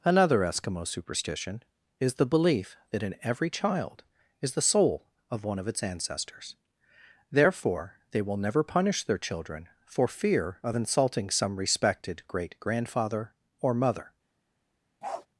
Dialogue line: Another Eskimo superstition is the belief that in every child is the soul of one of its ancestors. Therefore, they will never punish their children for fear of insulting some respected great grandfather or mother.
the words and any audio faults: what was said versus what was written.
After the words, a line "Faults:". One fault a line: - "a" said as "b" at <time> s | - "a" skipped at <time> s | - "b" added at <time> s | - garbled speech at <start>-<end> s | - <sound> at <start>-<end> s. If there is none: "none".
Another Eskimo superstition is the belief that in every child is the soul of one of its ancestors. Therefore, they will never punish their children for fear of insulting some respected great grandfather or mother.
Faults:
- bark at 15.0-15.3 s